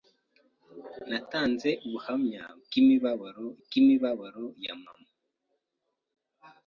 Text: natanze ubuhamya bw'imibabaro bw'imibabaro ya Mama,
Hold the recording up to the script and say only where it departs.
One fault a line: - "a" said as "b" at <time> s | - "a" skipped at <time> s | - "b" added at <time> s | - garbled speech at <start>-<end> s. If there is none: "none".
none